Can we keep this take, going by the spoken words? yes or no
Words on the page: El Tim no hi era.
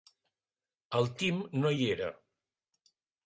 yes